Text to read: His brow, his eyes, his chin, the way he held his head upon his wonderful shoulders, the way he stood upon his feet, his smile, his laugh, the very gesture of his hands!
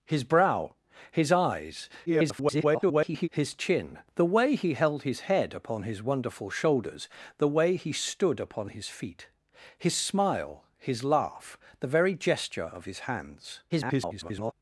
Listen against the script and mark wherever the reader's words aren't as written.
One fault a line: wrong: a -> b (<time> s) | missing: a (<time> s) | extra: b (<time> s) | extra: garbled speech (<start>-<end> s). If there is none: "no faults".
extra: garbled speech (2.1-3.3 s)
extra: garbled speech (13.7-14.5 s)